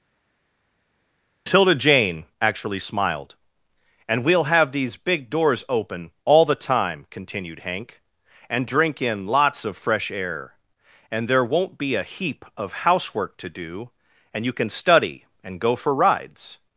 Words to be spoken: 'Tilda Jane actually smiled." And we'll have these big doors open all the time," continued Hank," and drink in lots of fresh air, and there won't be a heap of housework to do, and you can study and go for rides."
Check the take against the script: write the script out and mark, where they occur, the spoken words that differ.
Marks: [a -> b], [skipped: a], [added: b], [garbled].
'Tilda Jane actually smiled." And we'll have these big doors open all the time," continued Hank," and drink in lots of fresh air, and there won't be a heap of housework to do, and you can study and go for rides."